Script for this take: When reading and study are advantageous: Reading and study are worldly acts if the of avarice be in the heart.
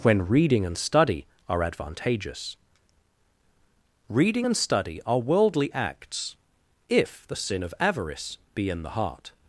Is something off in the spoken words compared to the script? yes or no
yes